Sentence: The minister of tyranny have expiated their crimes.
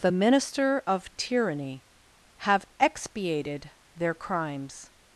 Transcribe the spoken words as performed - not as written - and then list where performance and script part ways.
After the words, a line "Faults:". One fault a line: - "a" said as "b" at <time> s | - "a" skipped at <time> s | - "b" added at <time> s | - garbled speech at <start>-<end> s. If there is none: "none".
The minister of tyranny have expiated their crimes.
Faults:
none